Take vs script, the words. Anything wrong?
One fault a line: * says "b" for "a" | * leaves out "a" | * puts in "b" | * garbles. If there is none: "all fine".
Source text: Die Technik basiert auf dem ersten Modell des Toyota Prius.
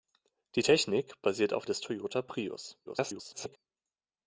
* leaves out "dem ersten Modell"
* garbles